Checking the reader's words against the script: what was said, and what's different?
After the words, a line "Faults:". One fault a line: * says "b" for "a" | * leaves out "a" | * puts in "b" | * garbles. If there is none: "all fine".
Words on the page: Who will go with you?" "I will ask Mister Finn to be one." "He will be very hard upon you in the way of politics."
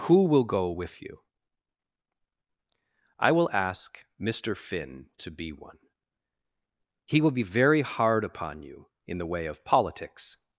Who will go with you?" "I will ask Mister Finn to be one." "He will be very hard upon you in the way of politics."
Faults:
all fine